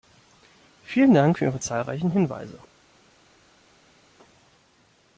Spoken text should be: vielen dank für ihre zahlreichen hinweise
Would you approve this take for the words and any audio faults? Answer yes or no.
yes